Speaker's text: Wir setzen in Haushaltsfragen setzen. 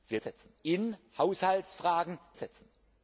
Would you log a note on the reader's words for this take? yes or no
no